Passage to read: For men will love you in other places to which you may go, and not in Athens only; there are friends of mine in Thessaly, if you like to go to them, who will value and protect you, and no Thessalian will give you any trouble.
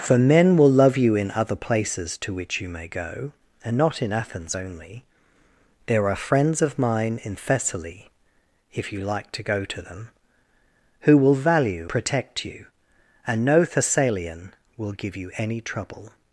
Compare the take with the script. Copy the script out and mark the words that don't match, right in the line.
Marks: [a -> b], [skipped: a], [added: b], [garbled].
For men will love you in other places to which you may go, and not in Athens only; there are friends of mine in Thessaly, if you like to go to them, who will value [skipped: and] protect you, and no Thessalian will give you any trouble.